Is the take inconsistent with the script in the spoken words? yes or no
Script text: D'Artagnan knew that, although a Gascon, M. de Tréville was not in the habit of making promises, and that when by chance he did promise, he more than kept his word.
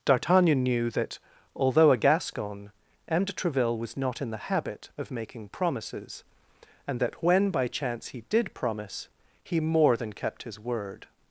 no